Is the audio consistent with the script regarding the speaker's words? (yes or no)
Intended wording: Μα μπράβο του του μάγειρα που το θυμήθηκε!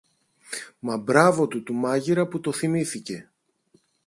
yes